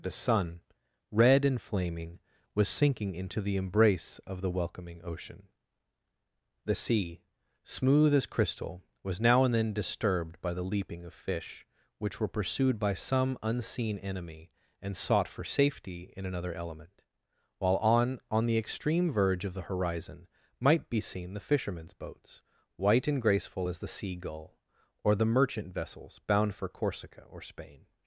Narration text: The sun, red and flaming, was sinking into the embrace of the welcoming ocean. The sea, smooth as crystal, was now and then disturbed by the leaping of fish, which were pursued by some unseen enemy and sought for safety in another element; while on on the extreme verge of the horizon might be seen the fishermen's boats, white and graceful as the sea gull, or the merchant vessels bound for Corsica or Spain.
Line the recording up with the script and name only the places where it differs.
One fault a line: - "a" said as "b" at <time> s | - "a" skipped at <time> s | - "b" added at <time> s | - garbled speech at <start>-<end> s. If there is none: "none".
none